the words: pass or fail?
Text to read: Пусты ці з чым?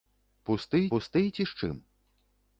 fail